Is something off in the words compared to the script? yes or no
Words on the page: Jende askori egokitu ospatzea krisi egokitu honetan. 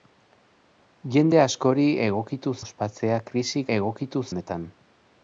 no